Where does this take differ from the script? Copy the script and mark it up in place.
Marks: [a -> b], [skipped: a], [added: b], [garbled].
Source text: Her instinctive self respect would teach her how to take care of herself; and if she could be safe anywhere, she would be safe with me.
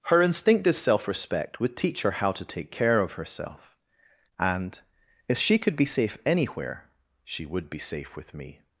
Her instinctive self respect would teach her how to take care of herself; and if she could be safe anywhere, she would be safe with me.